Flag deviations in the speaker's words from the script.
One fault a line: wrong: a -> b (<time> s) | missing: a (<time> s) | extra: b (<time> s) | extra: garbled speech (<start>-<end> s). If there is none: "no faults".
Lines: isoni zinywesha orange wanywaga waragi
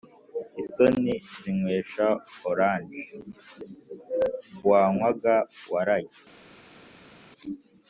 no faults